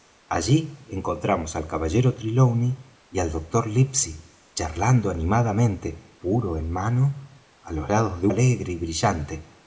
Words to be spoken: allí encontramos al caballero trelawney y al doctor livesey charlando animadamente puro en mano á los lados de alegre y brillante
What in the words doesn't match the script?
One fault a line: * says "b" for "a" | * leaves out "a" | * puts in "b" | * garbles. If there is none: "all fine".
all fine